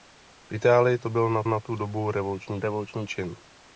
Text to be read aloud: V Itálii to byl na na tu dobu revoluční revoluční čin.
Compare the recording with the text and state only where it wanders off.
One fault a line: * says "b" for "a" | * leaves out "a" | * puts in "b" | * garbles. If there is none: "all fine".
all fine